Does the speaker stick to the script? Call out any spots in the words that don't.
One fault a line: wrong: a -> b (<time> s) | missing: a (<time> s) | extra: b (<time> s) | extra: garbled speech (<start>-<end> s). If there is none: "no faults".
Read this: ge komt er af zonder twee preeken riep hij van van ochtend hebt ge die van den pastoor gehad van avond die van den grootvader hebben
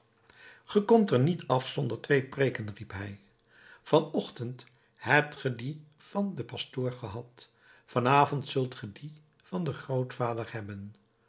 extra: niet (1.2 s)
missing: van (4.1 s)
extra: zult ge (8.5 s)